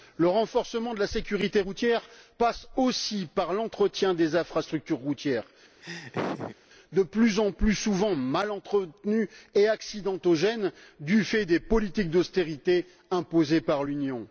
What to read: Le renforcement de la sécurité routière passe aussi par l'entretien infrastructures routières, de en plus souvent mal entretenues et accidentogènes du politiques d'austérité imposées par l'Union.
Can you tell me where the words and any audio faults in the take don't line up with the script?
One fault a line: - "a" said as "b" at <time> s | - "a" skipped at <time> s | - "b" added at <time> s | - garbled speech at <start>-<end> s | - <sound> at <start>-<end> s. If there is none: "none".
- "des" added at 4.1 s
- laugh at 5.8-6.6 s
- "plus" added at 7.0 s
- "fait des" added at 11.2 s